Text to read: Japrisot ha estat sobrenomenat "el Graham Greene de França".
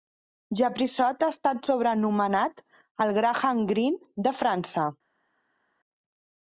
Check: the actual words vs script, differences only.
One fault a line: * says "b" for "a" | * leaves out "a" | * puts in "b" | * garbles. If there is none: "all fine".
all fine